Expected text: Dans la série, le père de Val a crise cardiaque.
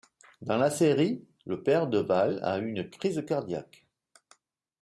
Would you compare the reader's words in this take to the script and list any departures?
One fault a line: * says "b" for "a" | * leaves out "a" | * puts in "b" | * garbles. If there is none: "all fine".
* puts in "une"